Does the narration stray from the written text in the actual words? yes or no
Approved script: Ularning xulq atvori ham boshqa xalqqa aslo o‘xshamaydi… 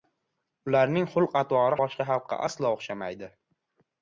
yes